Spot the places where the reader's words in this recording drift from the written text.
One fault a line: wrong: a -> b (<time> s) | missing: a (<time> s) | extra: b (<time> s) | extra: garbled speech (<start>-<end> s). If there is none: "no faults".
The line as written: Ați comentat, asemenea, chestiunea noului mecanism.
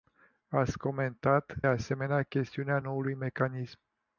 no faults